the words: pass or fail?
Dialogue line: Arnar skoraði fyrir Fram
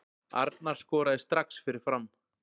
fail